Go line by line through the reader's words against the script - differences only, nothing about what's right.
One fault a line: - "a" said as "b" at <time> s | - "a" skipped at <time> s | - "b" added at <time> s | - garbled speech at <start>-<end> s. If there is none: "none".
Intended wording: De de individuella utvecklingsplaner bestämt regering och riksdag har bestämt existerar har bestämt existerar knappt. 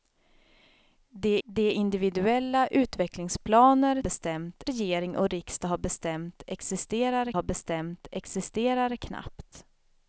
none